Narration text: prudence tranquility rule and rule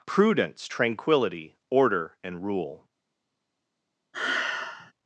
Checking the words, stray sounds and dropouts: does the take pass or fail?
fail